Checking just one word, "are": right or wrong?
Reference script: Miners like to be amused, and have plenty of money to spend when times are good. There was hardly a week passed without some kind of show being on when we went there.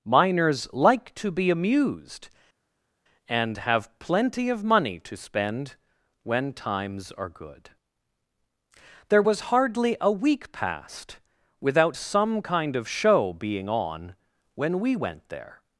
right